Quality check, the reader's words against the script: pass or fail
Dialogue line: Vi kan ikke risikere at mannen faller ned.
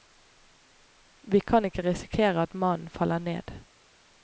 pass